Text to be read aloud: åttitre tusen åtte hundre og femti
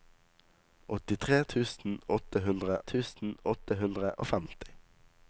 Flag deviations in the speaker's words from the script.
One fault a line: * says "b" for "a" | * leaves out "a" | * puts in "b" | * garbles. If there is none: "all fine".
* puts in "tusen åtte hundre"